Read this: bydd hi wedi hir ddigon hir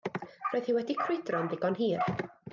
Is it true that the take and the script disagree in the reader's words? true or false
true